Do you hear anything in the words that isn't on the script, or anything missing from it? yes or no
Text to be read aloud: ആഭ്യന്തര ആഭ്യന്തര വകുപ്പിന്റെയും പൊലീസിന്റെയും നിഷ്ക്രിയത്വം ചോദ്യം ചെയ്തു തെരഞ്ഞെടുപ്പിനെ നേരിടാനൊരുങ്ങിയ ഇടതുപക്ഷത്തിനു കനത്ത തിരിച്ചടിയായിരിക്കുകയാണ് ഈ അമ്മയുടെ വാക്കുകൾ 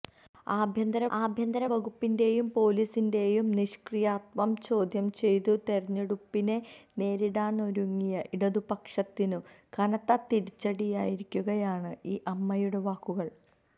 no